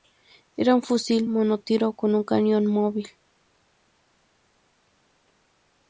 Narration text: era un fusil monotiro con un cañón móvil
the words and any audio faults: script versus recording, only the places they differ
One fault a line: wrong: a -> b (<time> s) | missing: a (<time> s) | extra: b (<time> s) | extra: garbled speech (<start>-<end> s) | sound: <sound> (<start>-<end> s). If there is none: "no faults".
no faults